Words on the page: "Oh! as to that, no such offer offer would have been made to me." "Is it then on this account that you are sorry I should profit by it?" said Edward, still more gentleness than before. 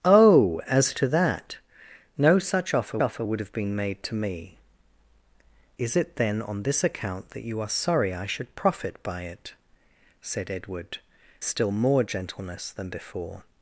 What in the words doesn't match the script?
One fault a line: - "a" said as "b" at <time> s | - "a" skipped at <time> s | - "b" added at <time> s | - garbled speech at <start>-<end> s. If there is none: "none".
none